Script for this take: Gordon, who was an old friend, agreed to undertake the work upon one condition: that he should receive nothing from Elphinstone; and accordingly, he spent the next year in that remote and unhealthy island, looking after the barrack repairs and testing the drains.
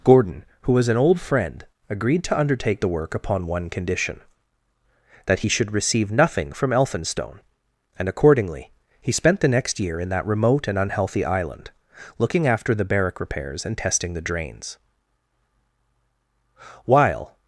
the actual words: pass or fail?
fail